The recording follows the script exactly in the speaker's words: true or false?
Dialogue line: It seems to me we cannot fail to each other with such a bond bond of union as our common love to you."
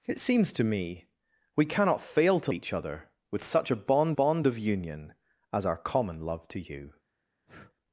true